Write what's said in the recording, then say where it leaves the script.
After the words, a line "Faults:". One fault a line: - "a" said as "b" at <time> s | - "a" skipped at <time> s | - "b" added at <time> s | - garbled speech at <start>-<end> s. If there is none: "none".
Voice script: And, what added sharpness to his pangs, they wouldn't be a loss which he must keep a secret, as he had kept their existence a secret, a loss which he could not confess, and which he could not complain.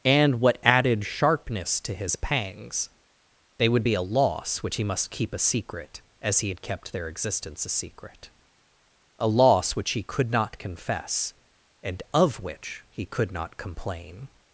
And, what added sharpness to his pangs, they would be a loss which he must keep a secret, as he had kept their existence a secret, a loss which he could not confess, and of which he could not complain.
Faults:
- "wouldn't" said as "would" at 3.7 s
- "of" added at 12.1 s